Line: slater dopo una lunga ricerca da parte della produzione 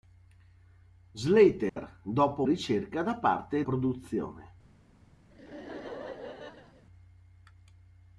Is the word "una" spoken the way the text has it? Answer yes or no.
no